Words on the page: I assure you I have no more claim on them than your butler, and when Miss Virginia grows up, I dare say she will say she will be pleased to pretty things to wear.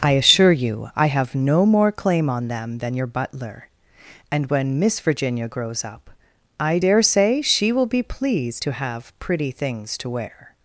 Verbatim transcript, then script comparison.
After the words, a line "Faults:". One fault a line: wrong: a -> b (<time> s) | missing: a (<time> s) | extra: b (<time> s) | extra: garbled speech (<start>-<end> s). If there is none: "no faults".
I assure you I have no more claim on them than your butler, and when Miss Virginia grows up, I dare say she will be pleased to have pretty things to wear.
Faults:
missing: say she will (7.9 s)
extra: have (8.7 s)